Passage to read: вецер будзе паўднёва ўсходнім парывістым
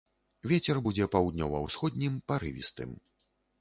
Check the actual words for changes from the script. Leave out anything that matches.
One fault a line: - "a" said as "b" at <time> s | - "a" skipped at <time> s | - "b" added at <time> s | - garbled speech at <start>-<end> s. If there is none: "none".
none